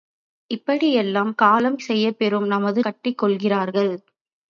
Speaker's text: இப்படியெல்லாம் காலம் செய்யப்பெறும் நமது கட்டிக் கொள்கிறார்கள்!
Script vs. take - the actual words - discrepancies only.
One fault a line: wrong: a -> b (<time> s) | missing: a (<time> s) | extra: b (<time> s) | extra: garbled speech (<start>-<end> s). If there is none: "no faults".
no faults